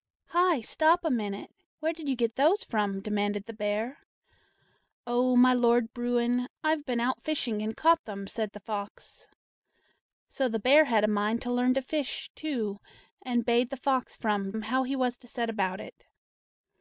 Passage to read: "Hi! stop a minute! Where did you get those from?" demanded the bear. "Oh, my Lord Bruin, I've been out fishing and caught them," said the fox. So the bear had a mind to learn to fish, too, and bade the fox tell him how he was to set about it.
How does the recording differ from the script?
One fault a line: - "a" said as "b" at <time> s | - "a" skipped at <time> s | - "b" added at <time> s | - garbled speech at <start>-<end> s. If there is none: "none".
- "tell" said as "from" at 14.1 s